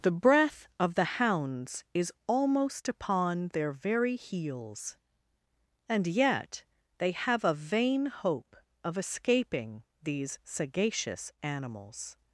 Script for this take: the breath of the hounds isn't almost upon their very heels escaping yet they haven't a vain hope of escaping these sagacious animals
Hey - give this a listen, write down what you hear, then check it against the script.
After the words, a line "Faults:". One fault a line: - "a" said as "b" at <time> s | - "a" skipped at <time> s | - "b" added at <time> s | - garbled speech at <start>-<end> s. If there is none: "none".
the breath of the hounds is almost upon their very heels and yet they have a vain hope of escaping these sagacious animals
Faults:
- "isn't" said as "is" at 1.9 s
- "escaping" said as "and" at 5.9 s
- "haven't" said as "have" at 7.1 s